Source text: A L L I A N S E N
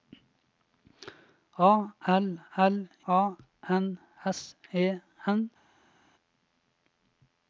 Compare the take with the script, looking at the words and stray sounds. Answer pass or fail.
fail